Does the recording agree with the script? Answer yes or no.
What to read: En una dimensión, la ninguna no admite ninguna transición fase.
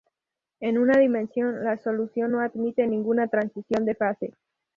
no